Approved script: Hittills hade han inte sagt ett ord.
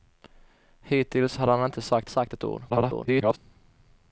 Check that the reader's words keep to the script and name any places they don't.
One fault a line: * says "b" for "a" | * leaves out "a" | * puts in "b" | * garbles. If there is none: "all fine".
* puts in "sagt"
* garbles